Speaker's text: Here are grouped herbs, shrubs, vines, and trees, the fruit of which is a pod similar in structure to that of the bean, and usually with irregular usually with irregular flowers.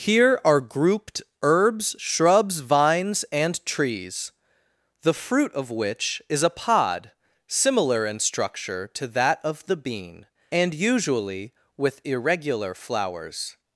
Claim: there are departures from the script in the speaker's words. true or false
true